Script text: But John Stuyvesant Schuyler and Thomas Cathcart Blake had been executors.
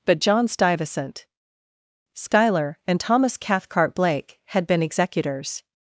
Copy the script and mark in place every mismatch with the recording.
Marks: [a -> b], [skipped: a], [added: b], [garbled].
But John Stuyvesant Schuyler and Thomas Cathcart Blake had been executors.